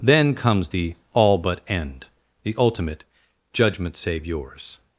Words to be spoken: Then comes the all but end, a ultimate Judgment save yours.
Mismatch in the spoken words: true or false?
true